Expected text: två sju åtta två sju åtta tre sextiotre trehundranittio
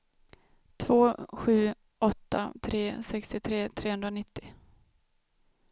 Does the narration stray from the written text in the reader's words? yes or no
yes